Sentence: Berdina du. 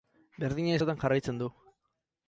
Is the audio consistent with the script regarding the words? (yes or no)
no